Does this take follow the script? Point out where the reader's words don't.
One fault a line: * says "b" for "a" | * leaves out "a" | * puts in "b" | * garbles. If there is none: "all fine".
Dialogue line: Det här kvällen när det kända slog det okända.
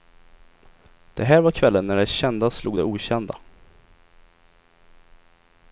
* puts in "var"